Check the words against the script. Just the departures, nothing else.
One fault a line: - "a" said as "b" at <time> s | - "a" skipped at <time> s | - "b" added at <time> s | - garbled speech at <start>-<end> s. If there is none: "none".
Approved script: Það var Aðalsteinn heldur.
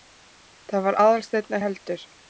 none